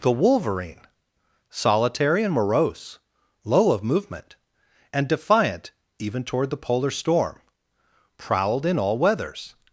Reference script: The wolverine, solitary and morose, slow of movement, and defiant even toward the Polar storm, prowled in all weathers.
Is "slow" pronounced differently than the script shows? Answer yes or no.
yes